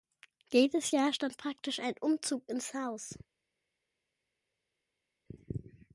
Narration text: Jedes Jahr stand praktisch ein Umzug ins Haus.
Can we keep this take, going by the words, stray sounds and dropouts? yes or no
yes